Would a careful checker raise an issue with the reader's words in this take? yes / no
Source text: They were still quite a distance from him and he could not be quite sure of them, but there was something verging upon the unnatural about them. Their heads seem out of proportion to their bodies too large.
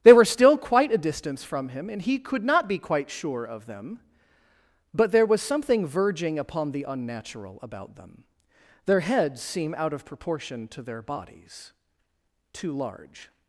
no